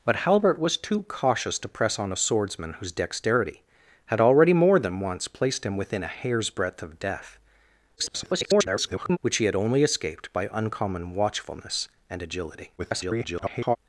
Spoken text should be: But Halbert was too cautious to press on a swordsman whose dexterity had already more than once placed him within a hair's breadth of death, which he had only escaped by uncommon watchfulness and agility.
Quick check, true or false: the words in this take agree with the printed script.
false